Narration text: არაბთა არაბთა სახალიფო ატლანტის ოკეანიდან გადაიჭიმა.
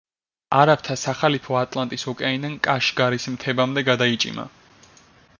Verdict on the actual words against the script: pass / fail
fail